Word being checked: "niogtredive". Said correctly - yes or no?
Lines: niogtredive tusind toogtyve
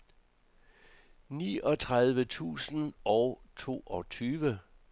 yes